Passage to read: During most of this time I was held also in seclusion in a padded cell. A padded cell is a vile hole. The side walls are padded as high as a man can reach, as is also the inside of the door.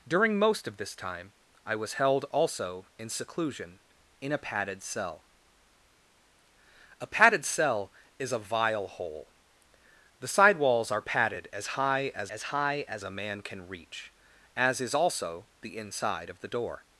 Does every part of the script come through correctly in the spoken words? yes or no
no